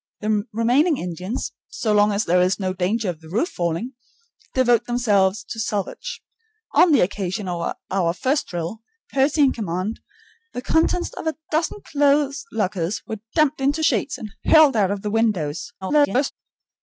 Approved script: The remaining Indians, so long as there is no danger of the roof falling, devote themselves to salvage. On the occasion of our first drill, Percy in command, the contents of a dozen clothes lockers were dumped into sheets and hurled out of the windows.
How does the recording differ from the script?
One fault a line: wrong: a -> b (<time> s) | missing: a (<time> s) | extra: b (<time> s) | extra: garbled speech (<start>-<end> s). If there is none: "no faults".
extra: garbled speech (15.8-16.3 s)